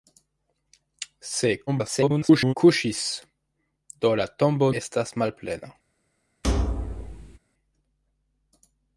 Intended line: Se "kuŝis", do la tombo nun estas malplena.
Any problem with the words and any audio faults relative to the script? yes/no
yes